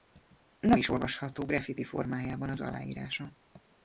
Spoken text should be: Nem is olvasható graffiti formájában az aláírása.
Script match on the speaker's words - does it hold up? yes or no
yes